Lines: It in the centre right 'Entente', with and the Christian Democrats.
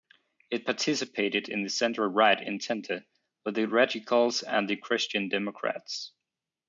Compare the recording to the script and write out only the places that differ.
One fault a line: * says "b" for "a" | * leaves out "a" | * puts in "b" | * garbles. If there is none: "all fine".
* puts in "participated"
* puts in "the Radicals"